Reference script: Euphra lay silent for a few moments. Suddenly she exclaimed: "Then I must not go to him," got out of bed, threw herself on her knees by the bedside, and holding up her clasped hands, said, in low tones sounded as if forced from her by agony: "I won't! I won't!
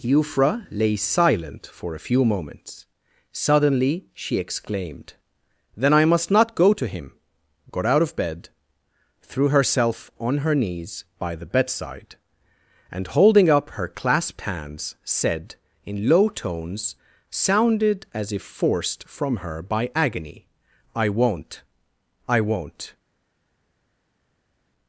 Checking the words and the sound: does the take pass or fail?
pass